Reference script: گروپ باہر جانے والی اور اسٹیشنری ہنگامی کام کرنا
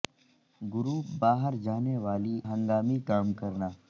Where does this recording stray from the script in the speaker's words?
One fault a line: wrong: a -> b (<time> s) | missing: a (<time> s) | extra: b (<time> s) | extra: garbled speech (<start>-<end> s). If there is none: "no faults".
missing: اور اسٹیشنری (2.4 s)